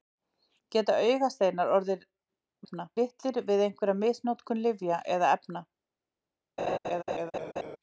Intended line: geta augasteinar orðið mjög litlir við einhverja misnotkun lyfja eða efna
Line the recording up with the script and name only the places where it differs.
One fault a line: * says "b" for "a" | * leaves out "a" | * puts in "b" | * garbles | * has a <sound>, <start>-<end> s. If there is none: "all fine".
* says "efna" for "mjög"
* has a laugh, 6.6-7.8 s